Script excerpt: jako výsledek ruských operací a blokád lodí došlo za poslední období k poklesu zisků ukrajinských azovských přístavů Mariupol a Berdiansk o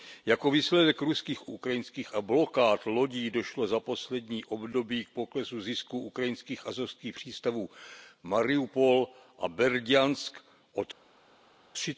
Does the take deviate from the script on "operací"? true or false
true